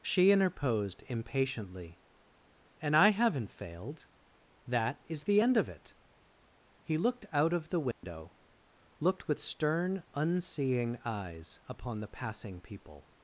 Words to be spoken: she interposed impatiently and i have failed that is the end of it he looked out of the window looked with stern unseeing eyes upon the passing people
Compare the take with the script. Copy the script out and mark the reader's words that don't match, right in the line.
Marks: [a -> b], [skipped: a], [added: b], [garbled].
she interposed impatiently and i [have -> haven't] failed that is the end of it he looked out of the window looked with stern unseeing eyes upon the passing people